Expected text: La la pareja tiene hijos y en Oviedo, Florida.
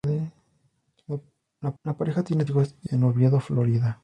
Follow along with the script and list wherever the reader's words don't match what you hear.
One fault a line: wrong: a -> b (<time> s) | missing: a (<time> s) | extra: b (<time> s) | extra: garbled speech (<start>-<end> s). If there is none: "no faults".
no faults